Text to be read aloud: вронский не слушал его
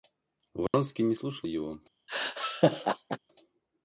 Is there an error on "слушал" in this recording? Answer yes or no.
no